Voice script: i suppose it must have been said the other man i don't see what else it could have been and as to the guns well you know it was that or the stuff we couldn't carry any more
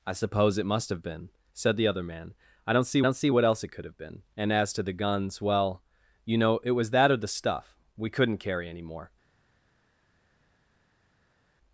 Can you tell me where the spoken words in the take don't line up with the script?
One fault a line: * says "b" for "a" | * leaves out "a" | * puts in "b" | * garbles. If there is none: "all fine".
* puts in "don't see"